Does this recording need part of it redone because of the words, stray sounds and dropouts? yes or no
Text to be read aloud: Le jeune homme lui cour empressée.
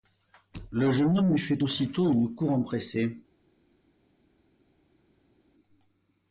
yes